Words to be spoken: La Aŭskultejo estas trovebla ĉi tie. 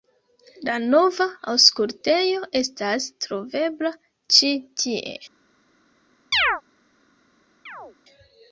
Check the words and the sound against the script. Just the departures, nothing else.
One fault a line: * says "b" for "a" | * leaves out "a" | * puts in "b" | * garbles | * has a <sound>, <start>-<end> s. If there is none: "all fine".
* puts in "nova"
* has a chirp, 6.3-6.6 s
* has a chirp, 7.7-8.0 s